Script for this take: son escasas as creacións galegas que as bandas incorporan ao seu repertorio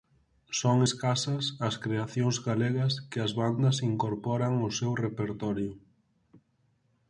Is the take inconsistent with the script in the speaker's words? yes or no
no